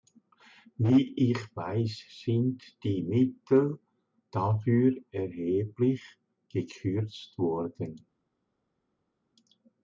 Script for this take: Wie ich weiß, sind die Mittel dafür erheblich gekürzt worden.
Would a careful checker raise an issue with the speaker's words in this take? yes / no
no